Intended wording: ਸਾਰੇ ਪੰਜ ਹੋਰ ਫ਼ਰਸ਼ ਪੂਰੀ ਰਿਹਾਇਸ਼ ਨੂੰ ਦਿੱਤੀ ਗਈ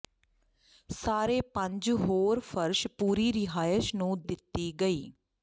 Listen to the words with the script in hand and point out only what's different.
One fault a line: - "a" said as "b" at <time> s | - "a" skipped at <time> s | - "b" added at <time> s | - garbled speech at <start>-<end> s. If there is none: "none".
none